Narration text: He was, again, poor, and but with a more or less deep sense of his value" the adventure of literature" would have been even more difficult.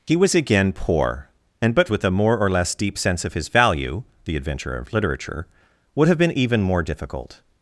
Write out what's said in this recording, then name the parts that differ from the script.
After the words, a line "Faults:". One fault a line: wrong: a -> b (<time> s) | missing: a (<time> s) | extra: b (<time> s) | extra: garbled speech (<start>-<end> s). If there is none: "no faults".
He was, again, poor, and but with a more or less deep sense of his value" the adventure of literature" would have been even more difficult.
Faults:
no faults